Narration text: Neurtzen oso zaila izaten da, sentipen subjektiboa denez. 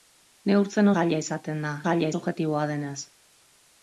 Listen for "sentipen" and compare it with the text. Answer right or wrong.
wrong